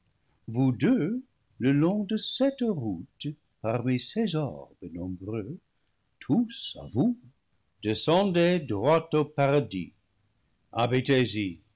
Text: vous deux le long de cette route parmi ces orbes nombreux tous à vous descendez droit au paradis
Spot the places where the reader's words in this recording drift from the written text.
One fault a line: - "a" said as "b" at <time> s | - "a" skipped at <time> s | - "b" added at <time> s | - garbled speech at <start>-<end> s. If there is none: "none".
none